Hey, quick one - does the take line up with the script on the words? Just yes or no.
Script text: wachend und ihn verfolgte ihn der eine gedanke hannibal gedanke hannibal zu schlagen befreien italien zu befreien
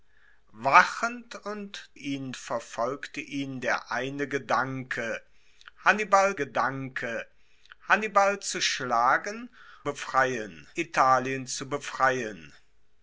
yes